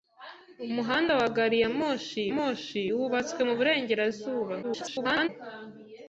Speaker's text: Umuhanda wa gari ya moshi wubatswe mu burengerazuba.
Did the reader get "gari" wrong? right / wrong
right